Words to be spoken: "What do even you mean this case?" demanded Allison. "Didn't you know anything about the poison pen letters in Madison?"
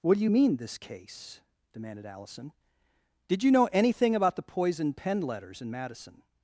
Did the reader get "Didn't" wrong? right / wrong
wrong